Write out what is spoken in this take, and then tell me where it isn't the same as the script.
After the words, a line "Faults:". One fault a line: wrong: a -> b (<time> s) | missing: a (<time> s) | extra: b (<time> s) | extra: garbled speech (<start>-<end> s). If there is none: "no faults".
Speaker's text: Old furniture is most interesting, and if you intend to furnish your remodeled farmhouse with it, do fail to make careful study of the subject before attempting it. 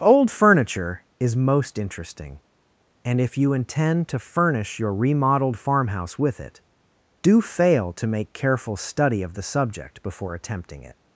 Old furniture is most interesting, and if you intend to furnish your remodeled farmhouse with it, do fail to make careful study of the subject before attempting it.
Faults:
no faults